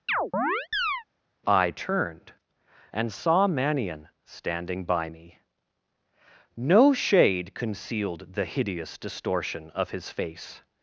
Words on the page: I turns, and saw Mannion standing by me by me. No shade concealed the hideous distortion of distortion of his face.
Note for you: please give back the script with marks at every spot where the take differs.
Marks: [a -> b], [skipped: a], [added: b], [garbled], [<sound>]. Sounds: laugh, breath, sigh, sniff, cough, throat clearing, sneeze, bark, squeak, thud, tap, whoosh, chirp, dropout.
[chirp] I [turns, -> turned] and saw Mannion standing by me [skipped: by me.] No shade concealed the hideous distortion of [skipped: distortion of] his face.